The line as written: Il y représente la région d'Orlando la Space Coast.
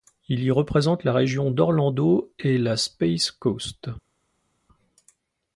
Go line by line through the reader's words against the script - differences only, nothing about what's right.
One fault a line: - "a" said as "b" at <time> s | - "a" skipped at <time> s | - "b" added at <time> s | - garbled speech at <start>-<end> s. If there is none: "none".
- "et" added at 2.4 s